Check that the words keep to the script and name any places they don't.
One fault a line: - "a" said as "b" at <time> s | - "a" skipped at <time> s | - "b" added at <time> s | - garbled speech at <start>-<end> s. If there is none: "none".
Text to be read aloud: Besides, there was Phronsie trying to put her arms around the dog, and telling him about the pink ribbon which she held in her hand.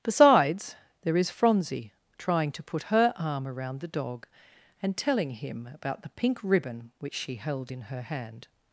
- "was" said as "is" at 1.2 s
- "arms" said as "arm" at 3.2 s